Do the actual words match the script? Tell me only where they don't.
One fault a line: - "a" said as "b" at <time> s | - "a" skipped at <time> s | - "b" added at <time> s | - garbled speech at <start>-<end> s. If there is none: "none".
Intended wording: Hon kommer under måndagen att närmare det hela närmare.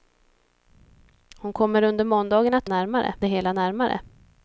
none